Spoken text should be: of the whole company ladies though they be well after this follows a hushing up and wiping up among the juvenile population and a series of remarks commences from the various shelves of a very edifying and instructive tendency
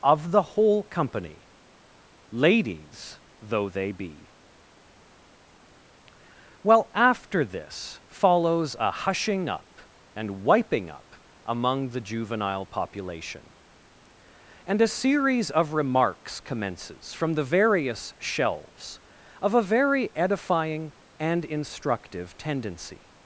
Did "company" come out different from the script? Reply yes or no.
no